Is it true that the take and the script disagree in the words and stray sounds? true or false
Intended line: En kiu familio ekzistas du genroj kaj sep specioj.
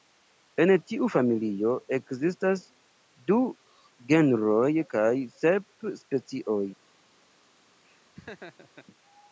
true